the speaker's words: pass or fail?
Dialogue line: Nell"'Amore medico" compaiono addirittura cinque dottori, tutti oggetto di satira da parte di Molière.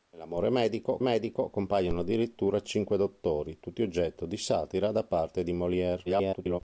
fail